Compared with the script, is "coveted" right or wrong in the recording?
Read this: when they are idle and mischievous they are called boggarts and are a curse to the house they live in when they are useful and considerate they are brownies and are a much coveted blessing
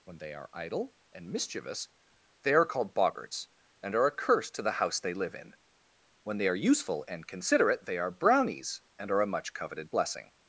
right